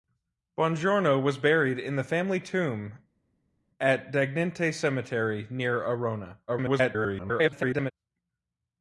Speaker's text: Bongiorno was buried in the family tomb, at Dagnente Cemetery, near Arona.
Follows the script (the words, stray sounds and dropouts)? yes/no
no